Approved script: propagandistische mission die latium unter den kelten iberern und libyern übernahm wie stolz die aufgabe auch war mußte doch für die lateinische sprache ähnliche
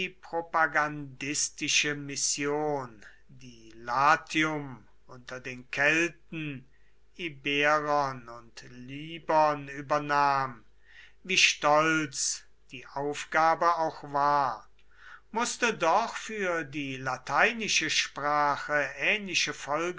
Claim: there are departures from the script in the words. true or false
false